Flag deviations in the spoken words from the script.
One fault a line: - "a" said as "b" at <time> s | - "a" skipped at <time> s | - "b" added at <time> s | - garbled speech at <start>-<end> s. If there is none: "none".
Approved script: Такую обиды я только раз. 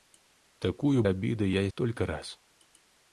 none